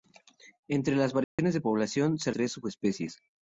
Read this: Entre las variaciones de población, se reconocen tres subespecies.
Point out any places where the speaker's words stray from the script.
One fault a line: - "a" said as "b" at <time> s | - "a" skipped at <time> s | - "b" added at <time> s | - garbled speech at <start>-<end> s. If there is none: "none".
- "reconocen" skipped at 2.3 s